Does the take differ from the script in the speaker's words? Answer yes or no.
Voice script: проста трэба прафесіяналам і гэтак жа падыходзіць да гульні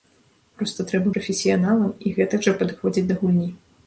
no